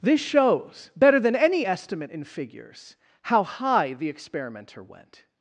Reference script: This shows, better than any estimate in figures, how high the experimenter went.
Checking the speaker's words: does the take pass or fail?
pass